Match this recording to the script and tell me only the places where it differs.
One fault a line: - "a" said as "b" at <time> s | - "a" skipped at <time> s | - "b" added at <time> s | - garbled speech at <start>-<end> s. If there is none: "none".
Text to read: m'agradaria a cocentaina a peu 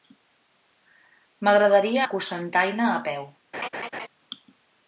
none